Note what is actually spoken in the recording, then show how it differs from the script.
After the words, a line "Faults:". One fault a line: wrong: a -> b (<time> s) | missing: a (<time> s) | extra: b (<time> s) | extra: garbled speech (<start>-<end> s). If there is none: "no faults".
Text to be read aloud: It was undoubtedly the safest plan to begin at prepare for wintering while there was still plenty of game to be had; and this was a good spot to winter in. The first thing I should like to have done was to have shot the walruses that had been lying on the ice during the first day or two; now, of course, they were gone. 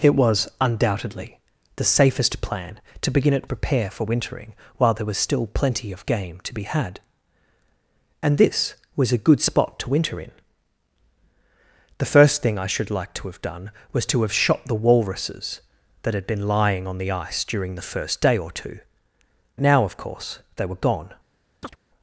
It was undoubtedly the safest plan to begin at prepare for wintering while there was still plenty of game to be had; and this was a good spot to winter in. The first thing I should like to have done was to have shot the walruses that had been lying on the ice during the first day or two; now, of course, they were gone.
Faults:
no faults